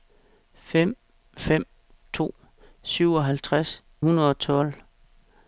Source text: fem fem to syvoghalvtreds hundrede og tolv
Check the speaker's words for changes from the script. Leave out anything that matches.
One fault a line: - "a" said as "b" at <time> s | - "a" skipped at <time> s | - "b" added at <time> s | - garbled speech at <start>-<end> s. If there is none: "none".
none